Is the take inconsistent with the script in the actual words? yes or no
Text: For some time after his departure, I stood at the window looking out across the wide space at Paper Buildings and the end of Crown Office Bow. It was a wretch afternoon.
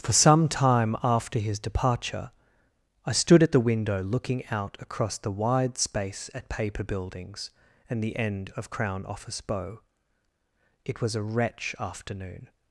no